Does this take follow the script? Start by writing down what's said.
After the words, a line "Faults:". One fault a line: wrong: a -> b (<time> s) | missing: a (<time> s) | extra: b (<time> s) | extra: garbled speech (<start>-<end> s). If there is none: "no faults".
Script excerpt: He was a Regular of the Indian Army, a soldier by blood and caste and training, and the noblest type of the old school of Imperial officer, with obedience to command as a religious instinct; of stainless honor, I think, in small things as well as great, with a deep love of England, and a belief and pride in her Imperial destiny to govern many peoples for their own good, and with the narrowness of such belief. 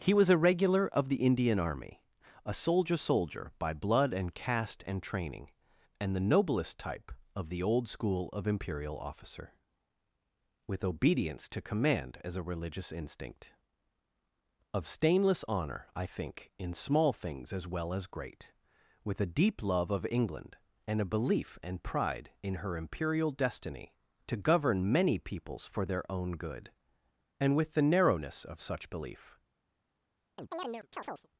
He was a Regular of the Indian Army, a soldier soldier by blood and caste and training, and the noblest type of the old school of Imperial officer, with obedience to command as a religious instinct; of stainless honor, I think, in small things as well as great, with a deep love of England, and a belief and pride in her Imperial destiny to govern many peoples for their own good, and with the narrowness of such belief.
Faults:
extra: soldier (3.0 s)